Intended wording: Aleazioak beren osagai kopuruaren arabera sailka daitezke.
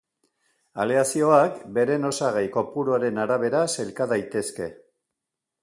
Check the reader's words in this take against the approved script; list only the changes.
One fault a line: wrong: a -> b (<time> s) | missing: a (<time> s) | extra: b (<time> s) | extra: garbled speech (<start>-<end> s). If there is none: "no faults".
no faults